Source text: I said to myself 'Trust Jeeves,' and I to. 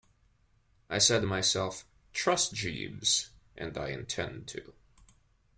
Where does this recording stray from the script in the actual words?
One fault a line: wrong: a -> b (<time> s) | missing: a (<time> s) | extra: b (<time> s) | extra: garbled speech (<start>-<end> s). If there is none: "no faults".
extra: intend (3.9 s)